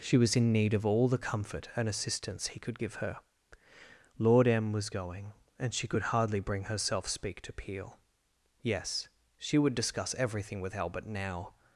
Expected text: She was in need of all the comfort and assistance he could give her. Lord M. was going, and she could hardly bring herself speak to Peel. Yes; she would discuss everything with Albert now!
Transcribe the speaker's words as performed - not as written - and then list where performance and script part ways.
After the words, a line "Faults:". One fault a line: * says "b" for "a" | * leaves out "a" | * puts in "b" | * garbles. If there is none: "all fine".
She was in need of all the comfort and assistance he could give her. Lord M. was going, and she could hardly bring herself speak to Peel. Yes; she would discuss everything with Albert now!
Faults:
all fine